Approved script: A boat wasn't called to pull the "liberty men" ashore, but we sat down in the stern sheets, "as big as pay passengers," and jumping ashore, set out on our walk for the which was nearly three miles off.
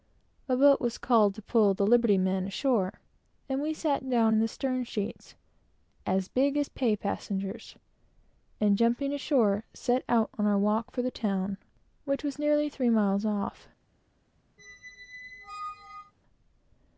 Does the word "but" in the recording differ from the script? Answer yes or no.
yes